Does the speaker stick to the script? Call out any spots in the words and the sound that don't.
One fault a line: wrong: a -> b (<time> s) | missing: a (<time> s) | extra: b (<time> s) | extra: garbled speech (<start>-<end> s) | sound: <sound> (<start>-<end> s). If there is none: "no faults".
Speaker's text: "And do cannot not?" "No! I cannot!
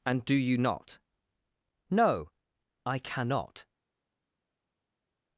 wrong: cannot -> you (0.3 s)